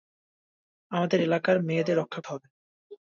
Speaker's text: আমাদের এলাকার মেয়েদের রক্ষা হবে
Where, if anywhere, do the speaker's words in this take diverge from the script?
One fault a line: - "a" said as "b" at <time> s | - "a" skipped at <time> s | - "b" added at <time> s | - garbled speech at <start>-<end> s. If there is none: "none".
none